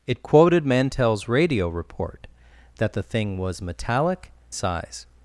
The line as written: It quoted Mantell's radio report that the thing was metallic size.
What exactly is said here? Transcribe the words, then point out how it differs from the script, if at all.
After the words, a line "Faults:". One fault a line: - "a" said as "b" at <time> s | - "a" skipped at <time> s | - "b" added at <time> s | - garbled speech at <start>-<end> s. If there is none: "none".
It quoted Mantell's radio report that the thing was metallic size.
Faults:
none